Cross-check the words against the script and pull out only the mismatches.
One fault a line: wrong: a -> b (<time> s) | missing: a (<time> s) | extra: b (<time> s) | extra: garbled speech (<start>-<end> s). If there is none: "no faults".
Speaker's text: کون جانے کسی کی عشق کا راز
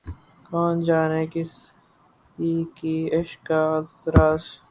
wrong: کی -> کے (2.8 s)